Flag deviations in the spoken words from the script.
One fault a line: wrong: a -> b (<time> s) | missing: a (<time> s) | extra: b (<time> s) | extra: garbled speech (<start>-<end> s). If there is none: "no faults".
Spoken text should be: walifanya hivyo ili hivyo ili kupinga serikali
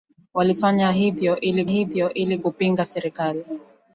no faults